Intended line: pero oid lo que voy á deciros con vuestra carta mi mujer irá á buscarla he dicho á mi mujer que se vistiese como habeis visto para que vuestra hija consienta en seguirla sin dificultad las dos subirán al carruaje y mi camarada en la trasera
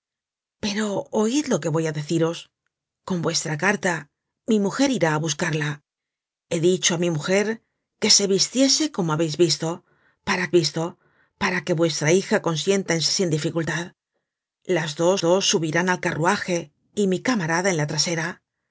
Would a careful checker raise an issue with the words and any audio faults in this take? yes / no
yes